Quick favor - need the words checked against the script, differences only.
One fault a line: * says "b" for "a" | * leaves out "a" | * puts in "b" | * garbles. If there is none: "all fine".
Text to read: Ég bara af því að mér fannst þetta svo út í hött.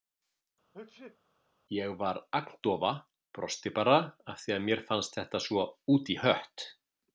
* puts in "var agndofa brosti"